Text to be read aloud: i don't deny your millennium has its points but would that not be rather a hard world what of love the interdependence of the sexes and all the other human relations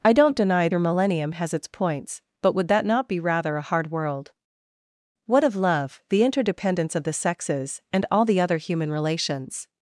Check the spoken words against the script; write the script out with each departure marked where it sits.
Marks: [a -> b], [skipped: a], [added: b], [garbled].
i don't deny your millennium has its points but would that not be rather a hard world what of love the interdependence of the sexes and all the other human relations